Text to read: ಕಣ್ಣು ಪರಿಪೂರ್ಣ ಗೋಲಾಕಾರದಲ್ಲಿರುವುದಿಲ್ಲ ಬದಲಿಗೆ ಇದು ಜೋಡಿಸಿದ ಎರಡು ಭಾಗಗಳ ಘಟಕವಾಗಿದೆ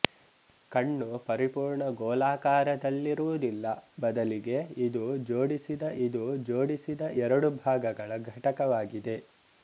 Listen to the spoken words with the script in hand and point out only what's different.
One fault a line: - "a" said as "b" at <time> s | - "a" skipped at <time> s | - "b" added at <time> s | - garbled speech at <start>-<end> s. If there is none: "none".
- "ಇದು ಜೋಡಿಸಿದ" added at 6.0 s